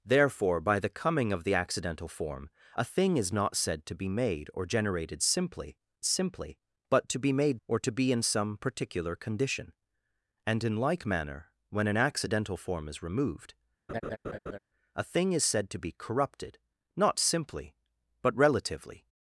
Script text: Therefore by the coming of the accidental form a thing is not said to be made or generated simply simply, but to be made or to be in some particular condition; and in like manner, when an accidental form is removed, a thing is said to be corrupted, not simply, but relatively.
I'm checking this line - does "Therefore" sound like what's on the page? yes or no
yes